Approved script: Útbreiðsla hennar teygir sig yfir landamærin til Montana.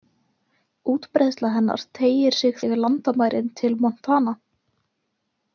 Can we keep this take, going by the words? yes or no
yes